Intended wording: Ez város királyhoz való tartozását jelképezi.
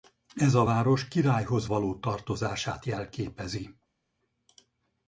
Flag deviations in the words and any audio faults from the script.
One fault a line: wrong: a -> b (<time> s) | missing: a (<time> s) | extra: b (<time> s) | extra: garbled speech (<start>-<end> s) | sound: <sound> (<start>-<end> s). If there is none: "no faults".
extra: a (0.5 s)